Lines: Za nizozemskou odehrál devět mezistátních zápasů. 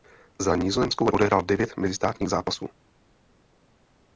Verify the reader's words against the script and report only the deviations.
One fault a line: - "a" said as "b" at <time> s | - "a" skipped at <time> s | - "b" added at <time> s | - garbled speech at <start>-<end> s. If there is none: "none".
none